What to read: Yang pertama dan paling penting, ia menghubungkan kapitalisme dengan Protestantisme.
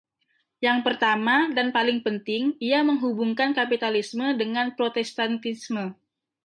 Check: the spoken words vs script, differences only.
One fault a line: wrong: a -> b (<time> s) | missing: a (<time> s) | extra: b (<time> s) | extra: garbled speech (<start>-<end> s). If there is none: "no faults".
no faults